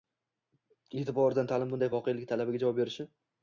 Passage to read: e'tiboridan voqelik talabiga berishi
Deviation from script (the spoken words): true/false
true